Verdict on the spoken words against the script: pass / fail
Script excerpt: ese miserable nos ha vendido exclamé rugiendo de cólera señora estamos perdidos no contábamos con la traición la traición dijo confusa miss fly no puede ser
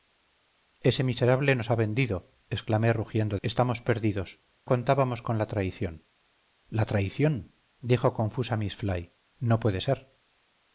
fail